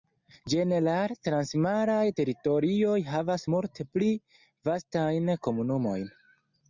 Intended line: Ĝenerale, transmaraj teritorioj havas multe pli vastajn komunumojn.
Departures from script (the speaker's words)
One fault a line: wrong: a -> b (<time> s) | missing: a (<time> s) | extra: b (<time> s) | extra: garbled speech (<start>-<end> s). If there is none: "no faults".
no faults